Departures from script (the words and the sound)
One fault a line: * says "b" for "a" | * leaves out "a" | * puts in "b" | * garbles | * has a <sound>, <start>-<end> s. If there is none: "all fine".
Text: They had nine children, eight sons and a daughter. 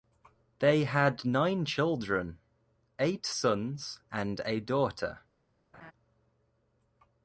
* has a laugh, 5.7-5.9 s